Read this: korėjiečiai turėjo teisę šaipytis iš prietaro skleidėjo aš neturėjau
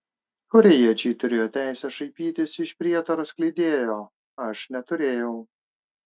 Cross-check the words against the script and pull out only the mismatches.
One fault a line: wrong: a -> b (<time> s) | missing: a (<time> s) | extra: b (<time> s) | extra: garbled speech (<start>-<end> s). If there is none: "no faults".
no faults